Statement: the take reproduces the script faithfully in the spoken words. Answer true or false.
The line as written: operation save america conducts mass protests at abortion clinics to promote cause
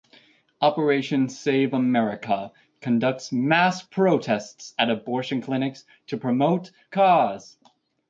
true